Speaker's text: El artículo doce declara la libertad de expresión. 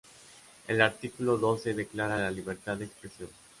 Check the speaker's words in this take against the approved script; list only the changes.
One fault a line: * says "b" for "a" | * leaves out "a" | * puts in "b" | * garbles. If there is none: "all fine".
all fine